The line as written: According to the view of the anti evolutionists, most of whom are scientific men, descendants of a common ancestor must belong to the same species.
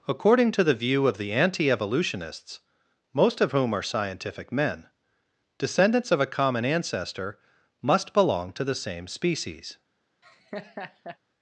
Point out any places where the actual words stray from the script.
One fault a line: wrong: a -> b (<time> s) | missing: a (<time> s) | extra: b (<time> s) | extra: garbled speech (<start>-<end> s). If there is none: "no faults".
no faults